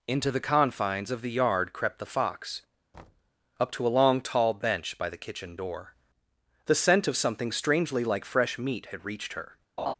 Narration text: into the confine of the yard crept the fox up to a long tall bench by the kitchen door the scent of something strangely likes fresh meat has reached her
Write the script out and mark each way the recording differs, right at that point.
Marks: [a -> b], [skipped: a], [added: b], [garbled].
into the [confine -> confines] of the yard crept the fox up to a long tall bench by the kitchen door the scent of something strangely [likes -> like] fresh meat [has -> had] reached her